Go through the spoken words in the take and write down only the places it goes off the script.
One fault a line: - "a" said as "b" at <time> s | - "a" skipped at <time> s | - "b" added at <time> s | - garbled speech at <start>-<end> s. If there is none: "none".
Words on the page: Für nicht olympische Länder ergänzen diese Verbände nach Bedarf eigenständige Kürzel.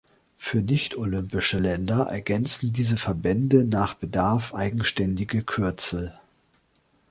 none